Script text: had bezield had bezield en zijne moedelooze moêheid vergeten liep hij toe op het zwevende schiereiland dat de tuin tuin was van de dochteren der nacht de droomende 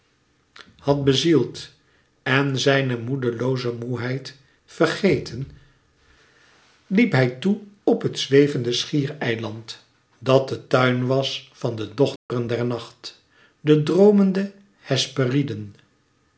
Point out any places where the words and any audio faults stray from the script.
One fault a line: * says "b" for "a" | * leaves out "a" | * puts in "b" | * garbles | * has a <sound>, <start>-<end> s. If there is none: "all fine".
* leaves out "had bezield"
* leaves out "tuin"
* has a dropout, 12.2-12.3 s